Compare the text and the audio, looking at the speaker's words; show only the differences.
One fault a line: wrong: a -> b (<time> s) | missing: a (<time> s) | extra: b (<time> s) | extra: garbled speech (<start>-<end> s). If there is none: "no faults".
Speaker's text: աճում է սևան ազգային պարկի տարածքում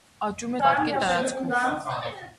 missing: սևան ազգային (0.6 s)